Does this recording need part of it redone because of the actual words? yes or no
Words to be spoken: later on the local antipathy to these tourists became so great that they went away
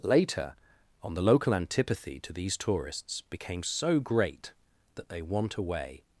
yes